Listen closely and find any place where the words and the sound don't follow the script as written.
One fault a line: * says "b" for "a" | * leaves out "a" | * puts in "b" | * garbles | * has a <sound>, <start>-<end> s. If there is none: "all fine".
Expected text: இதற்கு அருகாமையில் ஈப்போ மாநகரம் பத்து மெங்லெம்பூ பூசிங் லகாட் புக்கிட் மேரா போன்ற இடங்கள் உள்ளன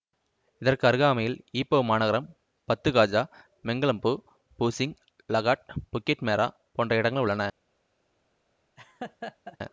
* puts in "காஜா"
* has a laugh, 8.8-9.6 s